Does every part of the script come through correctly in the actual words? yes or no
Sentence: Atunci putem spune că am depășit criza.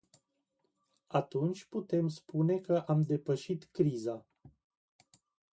yes